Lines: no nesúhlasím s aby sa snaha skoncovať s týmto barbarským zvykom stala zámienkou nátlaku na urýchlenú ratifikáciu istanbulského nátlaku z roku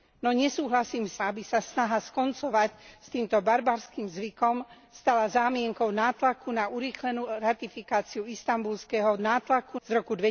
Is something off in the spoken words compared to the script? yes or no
no